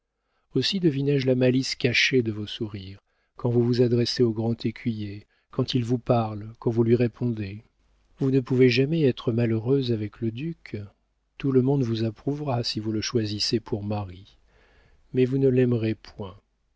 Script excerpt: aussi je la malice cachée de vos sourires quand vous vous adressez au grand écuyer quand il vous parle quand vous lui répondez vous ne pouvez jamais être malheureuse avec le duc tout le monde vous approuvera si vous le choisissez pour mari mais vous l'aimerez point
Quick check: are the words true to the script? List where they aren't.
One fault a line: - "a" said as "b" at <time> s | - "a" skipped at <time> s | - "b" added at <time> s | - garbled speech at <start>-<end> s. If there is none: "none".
- "deviné" added at 0.8 s
- "ne" added at 15.4 s